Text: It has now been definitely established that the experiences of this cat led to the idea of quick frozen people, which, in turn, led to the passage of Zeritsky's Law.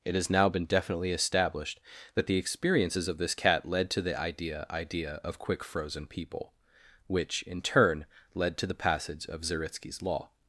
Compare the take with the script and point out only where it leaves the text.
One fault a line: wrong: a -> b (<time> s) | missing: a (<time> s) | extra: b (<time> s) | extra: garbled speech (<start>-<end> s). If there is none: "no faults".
extra: idea (4.7 s)